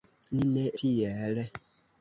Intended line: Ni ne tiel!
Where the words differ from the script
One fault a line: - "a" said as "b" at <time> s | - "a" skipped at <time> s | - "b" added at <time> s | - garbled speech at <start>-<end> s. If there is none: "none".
none